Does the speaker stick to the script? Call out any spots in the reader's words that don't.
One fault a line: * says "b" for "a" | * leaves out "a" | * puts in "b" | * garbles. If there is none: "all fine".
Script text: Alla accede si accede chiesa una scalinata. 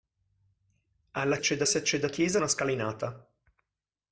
all fine